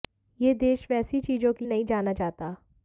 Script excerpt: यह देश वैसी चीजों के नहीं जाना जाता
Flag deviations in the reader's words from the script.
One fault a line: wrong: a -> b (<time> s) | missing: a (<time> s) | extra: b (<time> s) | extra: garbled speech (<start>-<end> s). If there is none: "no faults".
no faults